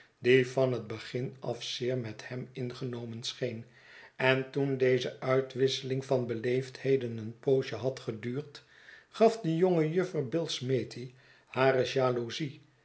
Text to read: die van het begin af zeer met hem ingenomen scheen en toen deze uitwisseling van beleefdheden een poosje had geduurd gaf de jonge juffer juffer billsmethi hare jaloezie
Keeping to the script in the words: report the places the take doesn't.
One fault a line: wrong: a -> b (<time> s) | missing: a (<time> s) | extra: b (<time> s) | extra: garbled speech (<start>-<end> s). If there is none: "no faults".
missing: juffer (10.3 s)